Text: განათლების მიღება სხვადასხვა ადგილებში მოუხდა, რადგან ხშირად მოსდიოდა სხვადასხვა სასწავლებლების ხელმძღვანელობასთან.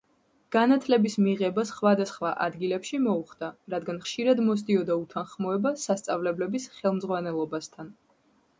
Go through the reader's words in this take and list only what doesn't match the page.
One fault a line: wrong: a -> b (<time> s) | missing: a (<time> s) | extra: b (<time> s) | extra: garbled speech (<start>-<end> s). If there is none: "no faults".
wrong: სხვადასხვა -> უთანხმოება (5.1 s)